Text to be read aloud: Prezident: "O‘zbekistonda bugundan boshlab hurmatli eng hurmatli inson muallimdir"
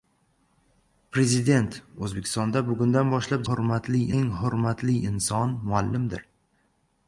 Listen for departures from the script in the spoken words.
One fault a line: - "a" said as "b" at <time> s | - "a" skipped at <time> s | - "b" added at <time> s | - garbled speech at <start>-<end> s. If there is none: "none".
none